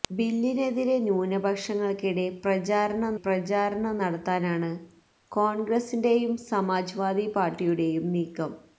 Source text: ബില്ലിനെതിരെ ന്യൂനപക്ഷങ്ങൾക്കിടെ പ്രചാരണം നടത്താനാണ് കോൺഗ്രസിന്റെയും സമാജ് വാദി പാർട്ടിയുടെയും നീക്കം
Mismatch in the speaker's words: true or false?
true